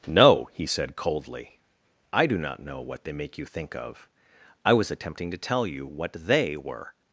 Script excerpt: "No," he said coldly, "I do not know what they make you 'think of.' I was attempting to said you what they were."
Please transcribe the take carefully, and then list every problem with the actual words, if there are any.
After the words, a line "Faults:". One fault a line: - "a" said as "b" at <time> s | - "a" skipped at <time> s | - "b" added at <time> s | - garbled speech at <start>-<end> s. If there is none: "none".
"No," he said coldly, "I do not know what they make you 'think of.' I was attempting to tell you what they were."
Faults:
- "said" said as "tell" at 5.4 s